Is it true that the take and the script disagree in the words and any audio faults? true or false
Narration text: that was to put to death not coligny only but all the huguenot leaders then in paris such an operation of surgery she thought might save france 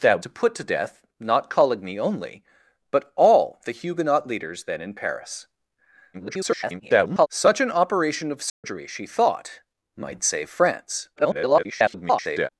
true